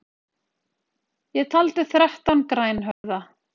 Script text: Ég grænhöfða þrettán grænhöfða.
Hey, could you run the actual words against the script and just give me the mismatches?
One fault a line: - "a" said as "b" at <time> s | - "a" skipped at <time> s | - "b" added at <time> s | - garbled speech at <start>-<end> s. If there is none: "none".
- "grænhöfða" said as "taldi" at 1.5 s